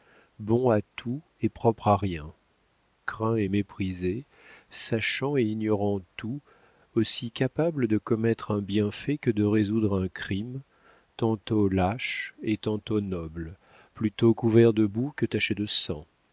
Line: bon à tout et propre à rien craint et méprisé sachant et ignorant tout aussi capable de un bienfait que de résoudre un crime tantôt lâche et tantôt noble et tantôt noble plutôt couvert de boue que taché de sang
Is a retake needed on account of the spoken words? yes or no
yes